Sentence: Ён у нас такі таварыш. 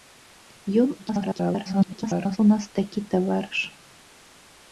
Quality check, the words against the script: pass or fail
fail